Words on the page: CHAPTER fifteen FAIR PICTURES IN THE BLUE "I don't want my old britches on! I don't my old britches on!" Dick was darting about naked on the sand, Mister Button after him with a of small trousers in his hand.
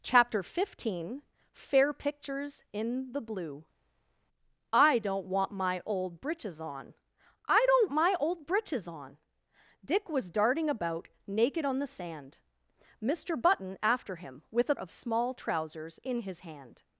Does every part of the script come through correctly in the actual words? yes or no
yes